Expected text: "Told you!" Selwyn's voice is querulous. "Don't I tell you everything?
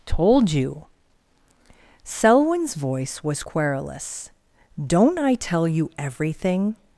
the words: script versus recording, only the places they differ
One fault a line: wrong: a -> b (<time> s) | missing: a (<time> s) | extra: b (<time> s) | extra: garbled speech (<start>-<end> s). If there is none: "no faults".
wrong: is -> was (3.2 s)